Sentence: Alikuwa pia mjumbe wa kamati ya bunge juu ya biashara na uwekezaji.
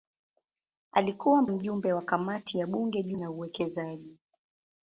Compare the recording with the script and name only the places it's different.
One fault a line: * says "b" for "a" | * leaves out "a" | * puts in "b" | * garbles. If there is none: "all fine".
* leaves out "pia"
* leaves out "ya biashara"